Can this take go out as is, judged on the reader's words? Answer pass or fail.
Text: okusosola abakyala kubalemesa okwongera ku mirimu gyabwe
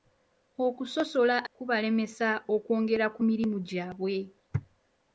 fail